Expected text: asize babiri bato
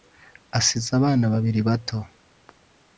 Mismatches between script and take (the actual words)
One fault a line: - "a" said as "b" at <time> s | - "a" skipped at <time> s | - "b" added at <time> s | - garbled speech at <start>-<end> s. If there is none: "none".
- "abana" added at 1.0 s